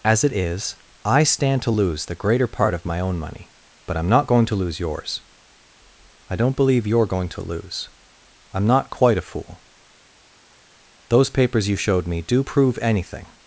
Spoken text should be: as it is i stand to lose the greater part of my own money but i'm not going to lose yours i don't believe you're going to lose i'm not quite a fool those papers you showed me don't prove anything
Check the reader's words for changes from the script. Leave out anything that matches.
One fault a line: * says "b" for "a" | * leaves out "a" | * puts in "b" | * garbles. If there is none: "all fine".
* says "do" for "don't"